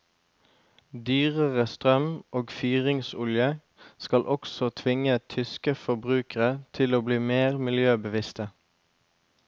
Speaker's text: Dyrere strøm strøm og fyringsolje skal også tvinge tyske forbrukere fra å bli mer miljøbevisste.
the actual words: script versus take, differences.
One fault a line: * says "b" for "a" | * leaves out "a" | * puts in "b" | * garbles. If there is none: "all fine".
* leaves out "strøm"
* says "til" for "fra"